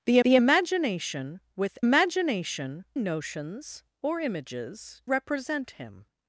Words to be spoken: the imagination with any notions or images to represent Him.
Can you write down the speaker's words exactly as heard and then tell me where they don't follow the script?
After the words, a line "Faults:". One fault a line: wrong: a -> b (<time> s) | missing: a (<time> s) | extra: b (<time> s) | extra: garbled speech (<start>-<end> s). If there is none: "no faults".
the the imagination with imagination notions or images represent Him.
Faults:
extra: the (0.2 s)
wrong: any -> imagination (1.8 s)
missing: to (5.0 s)